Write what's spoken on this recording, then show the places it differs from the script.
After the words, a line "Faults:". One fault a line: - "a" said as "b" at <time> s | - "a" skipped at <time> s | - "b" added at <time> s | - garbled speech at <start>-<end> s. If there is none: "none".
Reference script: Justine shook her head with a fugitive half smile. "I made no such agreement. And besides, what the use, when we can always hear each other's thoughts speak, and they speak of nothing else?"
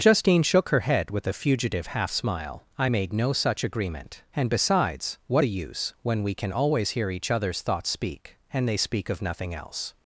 Justine shook her head with a fugitive half smile. "I made no such agreement. And besides, what the use, when we can always hear each other's thoughts speak, and they speak of nothing else?"
Faults:
none